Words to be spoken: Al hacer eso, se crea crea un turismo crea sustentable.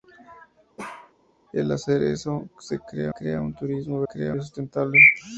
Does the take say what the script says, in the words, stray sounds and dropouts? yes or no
no